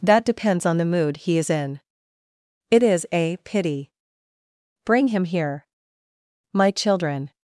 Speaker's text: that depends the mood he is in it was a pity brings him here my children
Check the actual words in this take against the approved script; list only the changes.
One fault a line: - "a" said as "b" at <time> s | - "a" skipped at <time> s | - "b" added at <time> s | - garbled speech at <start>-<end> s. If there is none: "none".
- "on" added at 0.7 s
- "was" said as "is" at 2.8 s
- "brings" said as "bring" at 4.9 s